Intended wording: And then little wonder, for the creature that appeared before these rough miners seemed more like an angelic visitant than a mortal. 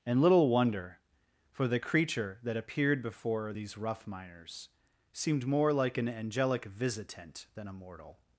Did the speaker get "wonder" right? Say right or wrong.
right